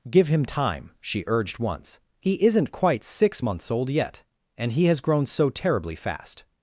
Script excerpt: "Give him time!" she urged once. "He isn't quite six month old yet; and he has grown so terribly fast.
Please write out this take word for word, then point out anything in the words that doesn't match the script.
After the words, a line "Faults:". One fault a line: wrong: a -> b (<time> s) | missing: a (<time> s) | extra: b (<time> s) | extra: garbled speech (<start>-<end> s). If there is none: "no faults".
"Give him time!" she urged once. "He isn't quite six months old yet; and he has grown so terribly fast.
Faults:
wrong: month -> months (3.4 s)